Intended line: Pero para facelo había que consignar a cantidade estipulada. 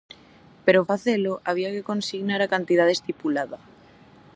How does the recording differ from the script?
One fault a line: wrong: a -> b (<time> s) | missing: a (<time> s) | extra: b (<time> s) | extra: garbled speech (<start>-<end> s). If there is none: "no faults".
missing: para (0.8 s)